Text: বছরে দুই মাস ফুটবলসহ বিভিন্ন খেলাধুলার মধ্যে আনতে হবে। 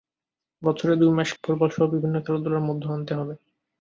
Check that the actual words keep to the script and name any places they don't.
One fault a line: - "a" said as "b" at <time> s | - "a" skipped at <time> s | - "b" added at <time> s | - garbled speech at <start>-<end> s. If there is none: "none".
none